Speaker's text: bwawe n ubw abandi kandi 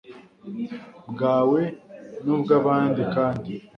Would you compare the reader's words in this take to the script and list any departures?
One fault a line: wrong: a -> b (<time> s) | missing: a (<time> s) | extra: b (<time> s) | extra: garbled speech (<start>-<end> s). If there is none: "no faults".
no faults